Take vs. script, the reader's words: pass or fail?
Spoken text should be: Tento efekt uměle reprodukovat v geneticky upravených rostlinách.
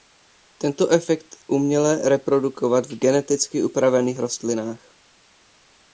pass